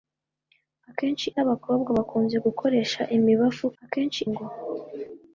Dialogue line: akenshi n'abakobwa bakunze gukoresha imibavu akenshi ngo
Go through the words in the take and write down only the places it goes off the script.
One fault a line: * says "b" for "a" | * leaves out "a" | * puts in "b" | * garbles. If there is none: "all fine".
all fine